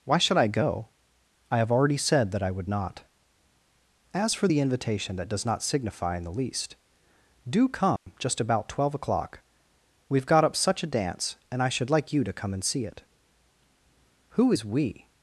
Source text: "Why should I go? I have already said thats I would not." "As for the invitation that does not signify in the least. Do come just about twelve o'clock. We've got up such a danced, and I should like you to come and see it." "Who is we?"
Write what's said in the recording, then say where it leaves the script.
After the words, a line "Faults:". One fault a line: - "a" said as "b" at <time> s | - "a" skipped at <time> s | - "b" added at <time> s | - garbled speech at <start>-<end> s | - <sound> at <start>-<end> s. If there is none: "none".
"Why should I go? I have already said that I would not." "As for the invitation that does not signify in the least. Do come just about twelve o'clock. We've got up such a dance, and I should like you to come and see it." "Who is we?"
Faults:
- "thats" said as "that" at 2.3 s
- dropout at 8.0-8.1 s
- "danced" said as "dance" at 10.9 s